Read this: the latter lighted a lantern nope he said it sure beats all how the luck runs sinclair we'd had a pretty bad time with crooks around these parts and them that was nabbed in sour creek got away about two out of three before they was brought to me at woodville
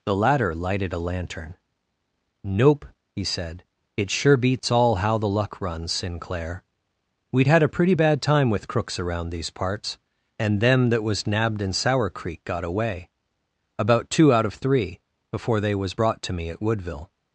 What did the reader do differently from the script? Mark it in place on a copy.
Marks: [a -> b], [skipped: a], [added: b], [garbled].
the latter lighted a lantern nope he said it sure beats all how the luck runs sinclair we'd had a pretty bad time with crooks around these parts and them that was nabbed in sour creek got away about two out of three before they was brought to me at woodville